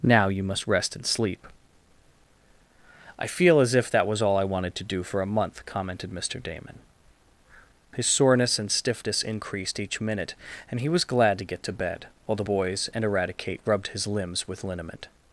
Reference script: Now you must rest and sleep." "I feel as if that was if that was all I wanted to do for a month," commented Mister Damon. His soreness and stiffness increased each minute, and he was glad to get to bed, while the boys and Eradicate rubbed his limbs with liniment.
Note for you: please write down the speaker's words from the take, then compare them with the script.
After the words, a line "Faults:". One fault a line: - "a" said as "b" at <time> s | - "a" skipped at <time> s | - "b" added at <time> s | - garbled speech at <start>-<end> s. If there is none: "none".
Now you must rest and sleep." "I feel as if that was all I wanted to do for a month," commented Mister Damon. His soreness and stiffness increased each minute, and he was glad to get to bed, while the boys and Eradicate rubbed his limbs with liniment.
Faults:
- "if that was" skipped at 4.2 s